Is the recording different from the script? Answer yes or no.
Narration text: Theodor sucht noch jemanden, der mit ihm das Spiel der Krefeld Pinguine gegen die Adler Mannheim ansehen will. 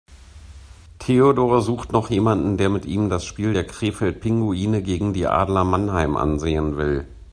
no